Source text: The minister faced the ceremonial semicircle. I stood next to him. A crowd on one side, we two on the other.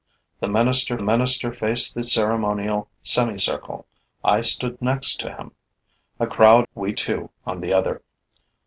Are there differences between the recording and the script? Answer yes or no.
yes